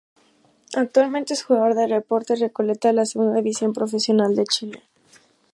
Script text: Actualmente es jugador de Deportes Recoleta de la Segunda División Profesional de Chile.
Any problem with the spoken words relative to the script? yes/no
no